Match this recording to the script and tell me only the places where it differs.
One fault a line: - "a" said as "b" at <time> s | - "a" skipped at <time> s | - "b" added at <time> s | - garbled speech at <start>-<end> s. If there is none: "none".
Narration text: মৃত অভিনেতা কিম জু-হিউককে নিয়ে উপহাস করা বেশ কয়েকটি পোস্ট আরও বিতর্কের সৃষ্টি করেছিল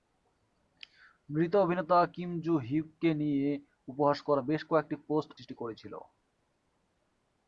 - "আরও বিতর্কের" skipped at 5.3 s